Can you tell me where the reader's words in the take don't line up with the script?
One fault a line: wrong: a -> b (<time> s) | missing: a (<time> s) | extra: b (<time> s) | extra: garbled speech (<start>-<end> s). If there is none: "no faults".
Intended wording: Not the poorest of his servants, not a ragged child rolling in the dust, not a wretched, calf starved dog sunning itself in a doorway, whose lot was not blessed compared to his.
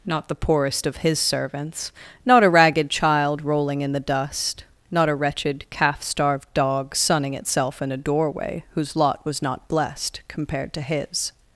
no faults